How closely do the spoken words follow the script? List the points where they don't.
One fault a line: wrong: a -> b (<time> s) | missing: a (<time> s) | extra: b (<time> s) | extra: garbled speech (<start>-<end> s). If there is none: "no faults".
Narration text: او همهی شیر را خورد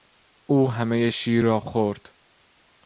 no faults